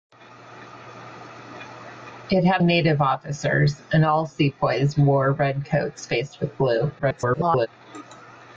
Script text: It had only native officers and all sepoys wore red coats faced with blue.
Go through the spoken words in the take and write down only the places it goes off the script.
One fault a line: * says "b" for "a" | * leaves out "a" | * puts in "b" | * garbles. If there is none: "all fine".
* leaves out "only"
* garbles